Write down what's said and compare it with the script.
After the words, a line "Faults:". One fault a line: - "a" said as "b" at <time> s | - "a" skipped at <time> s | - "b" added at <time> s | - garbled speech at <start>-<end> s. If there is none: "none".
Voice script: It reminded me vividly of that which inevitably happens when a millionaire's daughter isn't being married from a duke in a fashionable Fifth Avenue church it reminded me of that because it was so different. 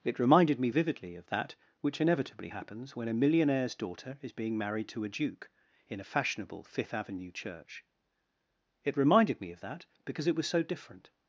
It reminded me vividly of that which inevitably happens when a millionaire's daughter is being married to a duke in a fashionable Fifth Avenue church it reminded me of that because it was so different.
Faults:
- "isn't" said as "is" at 4.2 s
- "from" said as "to" at 4.9 s